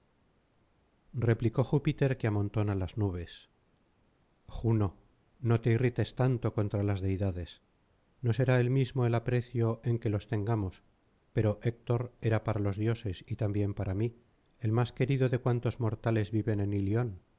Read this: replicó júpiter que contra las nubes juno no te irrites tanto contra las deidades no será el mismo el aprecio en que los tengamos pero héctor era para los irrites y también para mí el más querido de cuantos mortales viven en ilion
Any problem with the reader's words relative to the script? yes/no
yes